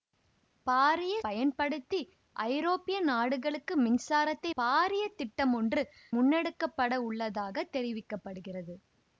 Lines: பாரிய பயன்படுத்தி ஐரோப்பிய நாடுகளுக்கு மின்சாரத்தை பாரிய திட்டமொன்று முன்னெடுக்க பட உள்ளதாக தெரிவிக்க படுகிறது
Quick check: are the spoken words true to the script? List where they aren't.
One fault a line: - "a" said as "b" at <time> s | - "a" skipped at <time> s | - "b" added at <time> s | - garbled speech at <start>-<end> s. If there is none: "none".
none